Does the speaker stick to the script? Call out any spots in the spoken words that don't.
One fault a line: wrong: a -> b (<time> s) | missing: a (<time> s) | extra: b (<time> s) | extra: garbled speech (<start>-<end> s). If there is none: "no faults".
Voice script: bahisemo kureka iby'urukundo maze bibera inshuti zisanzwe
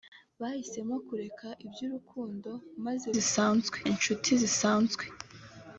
wrong: bibera -> zisanzwe (3.2 s)